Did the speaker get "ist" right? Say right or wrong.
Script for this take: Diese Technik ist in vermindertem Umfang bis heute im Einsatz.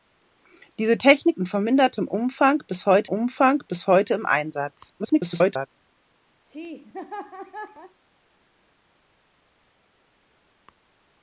wrong